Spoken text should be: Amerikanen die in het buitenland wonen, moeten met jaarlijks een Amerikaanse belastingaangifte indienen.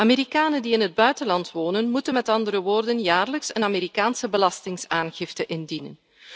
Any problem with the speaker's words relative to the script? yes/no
yes